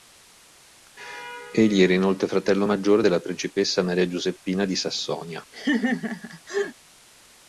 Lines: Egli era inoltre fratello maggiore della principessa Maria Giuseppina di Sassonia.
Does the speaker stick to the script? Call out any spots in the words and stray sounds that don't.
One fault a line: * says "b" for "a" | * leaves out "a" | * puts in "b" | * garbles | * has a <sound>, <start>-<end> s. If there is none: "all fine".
* has a laugh, 5.5-6.8 s